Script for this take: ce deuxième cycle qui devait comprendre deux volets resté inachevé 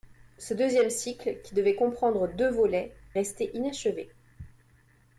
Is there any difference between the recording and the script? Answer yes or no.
no